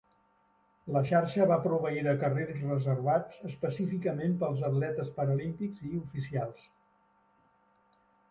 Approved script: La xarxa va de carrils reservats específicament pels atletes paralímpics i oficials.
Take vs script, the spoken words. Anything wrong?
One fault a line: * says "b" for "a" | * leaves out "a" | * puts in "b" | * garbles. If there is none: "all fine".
* puts in "proveir"